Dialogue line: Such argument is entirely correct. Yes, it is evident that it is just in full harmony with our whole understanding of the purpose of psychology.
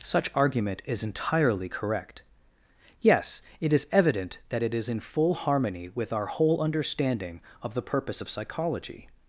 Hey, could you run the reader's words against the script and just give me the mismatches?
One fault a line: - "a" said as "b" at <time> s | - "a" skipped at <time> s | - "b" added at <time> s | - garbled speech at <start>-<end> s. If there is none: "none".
- "just" skipped at 4.9 s